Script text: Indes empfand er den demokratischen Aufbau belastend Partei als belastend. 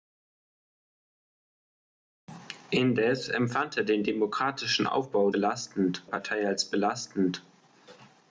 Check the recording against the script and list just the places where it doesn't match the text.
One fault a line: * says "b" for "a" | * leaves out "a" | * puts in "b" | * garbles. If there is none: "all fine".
all fine